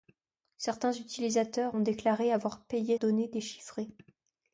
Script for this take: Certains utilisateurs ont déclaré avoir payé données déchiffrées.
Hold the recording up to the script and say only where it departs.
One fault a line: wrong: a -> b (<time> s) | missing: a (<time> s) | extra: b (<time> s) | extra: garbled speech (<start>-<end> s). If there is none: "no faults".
no faults